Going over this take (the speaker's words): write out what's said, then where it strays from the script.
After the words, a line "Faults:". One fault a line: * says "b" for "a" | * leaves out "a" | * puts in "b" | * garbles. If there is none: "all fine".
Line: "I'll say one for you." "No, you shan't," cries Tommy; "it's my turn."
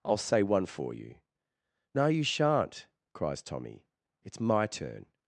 "I'll say one for you." "No, you shan't," cries Tommy; "it's my turn."
Faults:
all fine